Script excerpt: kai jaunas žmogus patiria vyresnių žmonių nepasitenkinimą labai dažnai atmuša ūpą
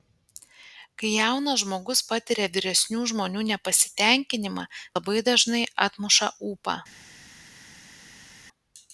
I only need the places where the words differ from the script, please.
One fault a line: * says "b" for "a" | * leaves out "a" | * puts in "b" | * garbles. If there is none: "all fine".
all fine